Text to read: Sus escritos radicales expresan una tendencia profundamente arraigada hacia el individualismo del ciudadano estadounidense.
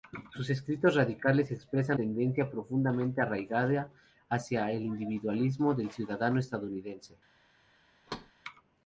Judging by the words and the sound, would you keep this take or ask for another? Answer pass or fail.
fail